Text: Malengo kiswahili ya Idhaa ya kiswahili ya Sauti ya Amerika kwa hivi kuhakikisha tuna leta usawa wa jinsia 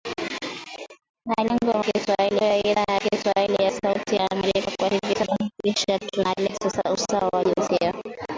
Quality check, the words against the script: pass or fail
pass